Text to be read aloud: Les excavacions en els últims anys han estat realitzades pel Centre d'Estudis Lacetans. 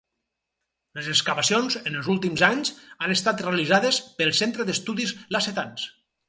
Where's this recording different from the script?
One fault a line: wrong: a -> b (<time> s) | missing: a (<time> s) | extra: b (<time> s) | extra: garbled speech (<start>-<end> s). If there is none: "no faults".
no faults